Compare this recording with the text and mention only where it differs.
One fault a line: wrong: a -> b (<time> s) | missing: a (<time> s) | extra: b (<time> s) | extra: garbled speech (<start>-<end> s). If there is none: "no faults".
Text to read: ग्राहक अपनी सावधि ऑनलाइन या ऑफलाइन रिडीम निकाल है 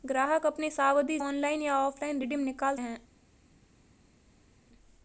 no faults